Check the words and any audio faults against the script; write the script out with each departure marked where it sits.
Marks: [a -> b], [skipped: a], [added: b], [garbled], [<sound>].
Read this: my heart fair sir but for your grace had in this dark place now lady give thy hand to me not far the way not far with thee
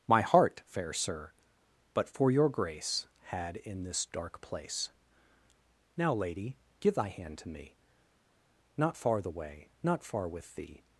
my heart fair sir but for your grace had in this dark place now lady give thy hand to me not far the way not far with thee